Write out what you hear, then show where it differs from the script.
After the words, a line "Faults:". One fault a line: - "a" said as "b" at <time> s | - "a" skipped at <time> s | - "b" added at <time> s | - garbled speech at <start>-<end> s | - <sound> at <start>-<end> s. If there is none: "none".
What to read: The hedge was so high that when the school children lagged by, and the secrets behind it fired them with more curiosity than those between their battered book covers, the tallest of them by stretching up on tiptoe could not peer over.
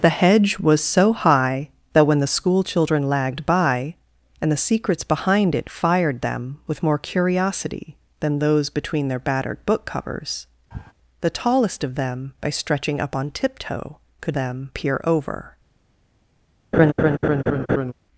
The hedge was so high that when the school children lagged by, and the secrets behind it fired them with more curiosity than those between their battered book covers, the tallest of them by stretching up on tiptoe could them peer over.
Faults:
- sniff at 10.7-10.9 s
- "not" said as "them" at 14.3 s
- laugh at 16.7-17.9 s